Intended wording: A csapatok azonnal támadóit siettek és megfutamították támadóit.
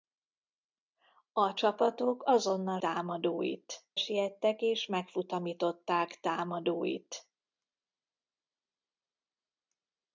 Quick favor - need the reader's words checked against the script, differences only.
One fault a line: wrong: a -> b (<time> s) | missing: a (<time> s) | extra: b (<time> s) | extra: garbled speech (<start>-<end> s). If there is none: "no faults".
no faults